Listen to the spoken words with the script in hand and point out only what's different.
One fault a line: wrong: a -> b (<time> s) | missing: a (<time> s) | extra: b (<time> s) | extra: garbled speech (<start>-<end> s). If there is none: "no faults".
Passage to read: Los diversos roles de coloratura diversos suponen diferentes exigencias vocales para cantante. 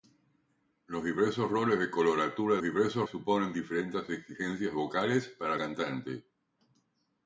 no faults